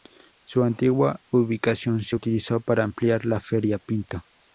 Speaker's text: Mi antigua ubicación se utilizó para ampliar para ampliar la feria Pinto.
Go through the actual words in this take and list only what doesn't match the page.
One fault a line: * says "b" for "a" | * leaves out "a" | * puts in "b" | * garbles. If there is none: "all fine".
* says "Su" for "Mi"
* leaves out "para ampliar"